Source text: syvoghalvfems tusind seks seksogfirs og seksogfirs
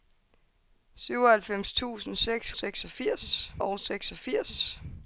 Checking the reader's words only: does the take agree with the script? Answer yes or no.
yes